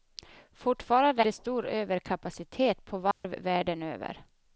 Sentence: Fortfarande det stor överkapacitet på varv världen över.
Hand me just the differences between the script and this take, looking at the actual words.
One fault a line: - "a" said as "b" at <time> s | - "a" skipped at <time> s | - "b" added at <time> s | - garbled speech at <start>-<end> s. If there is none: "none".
none